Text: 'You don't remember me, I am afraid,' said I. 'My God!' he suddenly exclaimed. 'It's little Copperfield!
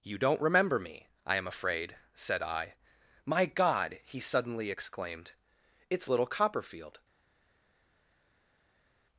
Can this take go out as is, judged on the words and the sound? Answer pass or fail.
pass